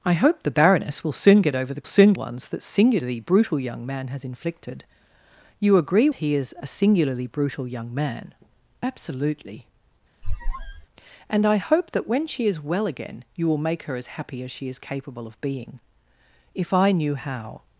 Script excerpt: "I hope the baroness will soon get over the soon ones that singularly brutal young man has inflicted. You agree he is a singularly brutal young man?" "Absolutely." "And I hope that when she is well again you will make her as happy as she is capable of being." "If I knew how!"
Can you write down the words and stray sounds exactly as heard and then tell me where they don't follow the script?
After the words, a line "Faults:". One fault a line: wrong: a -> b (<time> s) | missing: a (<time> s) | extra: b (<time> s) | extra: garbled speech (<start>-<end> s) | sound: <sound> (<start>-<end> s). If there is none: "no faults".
"I hope the baroness will soon get over the soon ones that singularly brutal young man has inflicted. You agree he is a singularly brutal young man?" "Absolutely." "And I hope that when she is well again you will make her as happy as she is capable of being." "If I knew how!"
Faults:
sound: squeak (10.2-10.9 s)